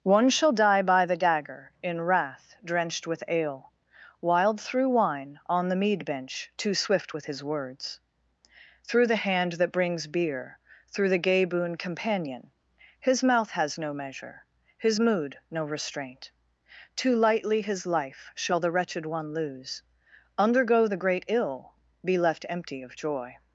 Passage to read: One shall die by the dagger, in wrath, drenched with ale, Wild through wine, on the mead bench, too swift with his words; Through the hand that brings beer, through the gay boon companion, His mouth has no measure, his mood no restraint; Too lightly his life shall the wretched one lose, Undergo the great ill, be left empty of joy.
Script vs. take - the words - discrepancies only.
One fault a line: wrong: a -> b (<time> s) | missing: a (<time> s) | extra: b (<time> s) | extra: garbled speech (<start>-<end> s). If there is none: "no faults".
no faults